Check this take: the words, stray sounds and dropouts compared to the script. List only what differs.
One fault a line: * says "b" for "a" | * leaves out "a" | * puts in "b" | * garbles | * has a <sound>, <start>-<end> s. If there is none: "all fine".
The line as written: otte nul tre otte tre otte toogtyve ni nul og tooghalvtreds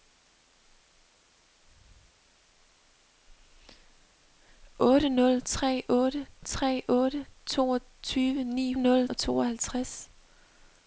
all fine